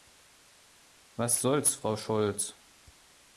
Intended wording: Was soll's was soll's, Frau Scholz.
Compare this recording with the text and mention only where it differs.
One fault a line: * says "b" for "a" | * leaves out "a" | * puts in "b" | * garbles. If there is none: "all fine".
* leaves out "was soll's"